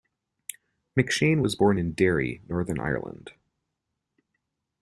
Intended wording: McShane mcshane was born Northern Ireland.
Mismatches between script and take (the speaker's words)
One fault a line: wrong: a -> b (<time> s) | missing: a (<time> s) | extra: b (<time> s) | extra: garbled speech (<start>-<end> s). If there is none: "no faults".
missing: mcshane (1.4 s)
extra: in Derry (1.7 s)